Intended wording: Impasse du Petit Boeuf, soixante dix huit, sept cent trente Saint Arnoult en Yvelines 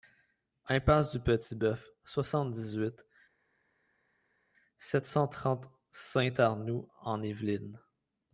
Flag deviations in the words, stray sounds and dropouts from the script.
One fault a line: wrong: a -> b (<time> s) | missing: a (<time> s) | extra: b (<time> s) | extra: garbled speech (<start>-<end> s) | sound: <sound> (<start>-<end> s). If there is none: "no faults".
no faults